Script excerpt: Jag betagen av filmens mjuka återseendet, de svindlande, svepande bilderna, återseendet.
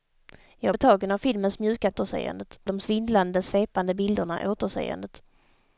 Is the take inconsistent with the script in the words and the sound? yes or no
no